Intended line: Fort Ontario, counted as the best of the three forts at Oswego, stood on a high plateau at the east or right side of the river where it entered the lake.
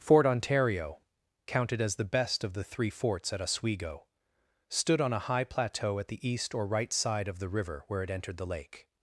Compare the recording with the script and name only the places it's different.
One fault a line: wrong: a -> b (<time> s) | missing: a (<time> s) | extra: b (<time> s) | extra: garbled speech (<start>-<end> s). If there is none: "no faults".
no faults